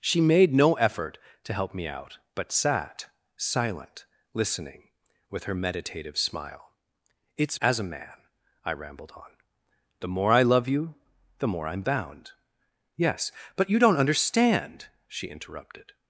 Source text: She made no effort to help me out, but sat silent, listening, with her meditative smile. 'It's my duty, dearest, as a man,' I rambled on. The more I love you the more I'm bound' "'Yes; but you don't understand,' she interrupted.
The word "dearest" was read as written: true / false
false